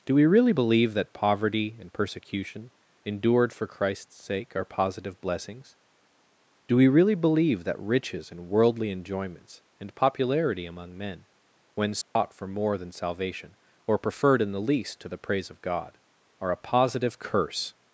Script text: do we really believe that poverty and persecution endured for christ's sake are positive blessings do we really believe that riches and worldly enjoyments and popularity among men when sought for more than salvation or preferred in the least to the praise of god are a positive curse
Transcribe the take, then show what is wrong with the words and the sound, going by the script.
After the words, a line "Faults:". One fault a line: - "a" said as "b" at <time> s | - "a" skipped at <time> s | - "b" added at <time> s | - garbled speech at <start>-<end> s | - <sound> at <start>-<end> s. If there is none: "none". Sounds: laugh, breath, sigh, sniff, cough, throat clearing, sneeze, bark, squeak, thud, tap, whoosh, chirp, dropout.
do we really believe that poverty and persecution endured for christ's sake are positive blessings do we really believe that riches and worldly enjoyments and popularity among men when sought for more than salvation or preferred in the least to the praise of god are a positive curse
Faults:
- dropout at 12.0-12.2 s